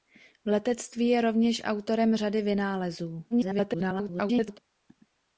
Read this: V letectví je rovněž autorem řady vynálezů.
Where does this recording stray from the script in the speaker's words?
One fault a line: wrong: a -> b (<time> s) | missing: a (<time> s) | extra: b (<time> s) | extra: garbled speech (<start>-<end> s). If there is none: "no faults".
extra: garbled speech (3.3-4.6 s)